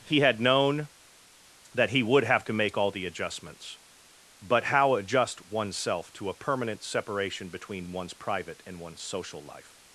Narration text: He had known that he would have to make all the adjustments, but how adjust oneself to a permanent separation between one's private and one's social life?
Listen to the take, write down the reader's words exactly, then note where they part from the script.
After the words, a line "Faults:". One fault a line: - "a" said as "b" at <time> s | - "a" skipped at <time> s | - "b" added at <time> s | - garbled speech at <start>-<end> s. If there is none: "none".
He had known that he would have to make all the adjustments, but how adjust oneself to a permanent separation between one's private and one's social life?
Faults:
none